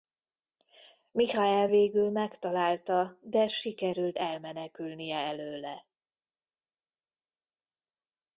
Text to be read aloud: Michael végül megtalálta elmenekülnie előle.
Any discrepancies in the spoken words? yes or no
yes